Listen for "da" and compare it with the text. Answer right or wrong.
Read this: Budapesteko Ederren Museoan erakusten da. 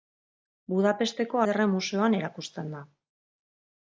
right